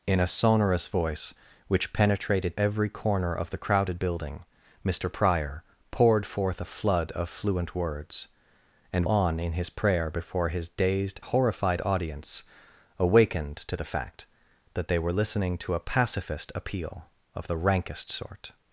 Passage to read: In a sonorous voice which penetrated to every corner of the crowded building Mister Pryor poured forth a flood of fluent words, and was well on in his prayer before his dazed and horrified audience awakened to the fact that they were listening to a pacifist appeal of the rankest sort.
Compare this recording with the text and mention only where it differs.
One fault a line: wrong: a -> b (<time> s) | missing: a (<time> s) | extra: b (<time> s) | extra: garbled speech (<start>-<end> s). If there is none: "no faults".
missing: to (2.5 s)
missing: was well (9.1 s)
missing: and (11.2 s)